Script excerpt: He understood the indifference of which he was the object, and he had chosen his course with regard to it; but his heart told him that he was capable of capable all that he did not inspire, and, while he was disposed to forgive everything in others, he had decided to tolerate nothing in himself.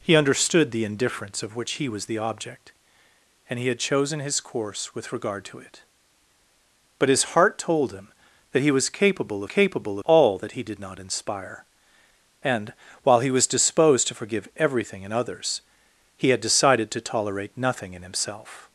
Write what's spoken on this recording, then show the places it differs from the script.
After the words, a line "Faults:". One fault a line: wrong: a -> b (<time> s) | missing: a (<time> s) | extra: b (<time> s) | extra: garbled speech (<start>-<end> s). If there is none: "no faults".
He understood the indifference of which he was the object, and he had chosen his course with regard to it; but his heart told him that he was capable of capable all that he did not inspire, and, while he was disposed to forgive everything in others, he had decided to tolerate nothing in himself.
Faults:
no faults